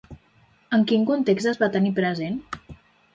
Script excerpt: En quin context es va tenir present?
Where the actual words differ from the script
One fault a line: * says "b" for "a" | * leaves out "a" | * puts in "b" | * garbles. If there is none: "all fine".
all fine